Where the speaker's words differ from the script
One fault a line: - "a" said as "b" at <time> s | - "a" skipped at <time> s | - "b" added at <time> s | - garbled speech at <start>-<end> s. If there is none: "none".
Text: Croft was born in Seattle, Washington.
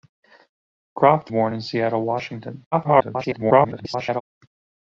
- "was" skipped at 1.3 s
- garbled speech at 2.7-4.2 s